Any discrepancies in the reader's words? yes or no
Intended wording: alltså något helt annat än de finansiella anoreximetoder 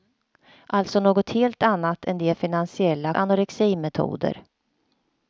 no